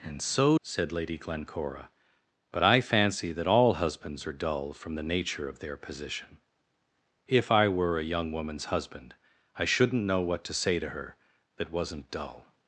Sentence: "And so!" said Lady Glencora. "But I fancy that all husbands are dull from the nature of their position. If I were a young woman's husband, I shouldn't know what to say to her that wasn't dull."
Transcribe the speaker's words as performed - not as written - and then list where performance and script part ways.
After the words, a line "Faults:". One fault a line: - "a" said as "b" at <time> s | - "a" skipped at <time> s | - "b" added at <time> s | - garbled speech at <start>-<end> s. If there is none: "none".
"And so!" said Lady Glencora. "But I fancy that all husbands are dull from the nature of their position. If I were a young woman's husband, I shouldn't know what to say to her that wasn't dull."
Faults:
none